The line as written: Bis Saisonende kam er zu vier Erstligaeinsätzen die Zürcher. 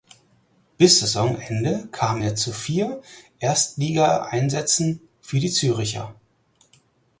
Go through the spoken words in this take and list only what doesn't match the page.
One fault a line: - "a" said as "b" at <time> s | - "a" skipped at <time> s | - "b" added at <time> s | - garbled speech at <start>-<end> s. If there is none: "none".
- "für" added at 5.2 s